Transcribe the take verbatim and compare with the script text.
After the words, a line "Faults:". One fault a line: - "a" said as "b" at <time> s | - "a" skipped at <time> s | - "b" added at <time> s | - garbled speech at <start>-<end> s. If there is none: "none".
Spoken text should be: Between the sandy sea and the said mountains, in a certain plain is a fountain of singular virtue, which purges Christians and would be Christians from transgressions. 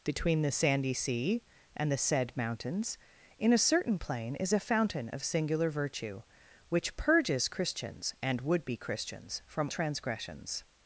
Between the sandy sea and the said mountains, in a certain plain is a fountain of singular virtue, which purges Christians and would be Christians from transgressions.
Faults:
none